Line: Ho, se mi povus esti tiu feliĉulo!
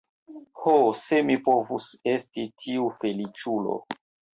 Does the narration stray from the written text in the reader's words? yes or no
no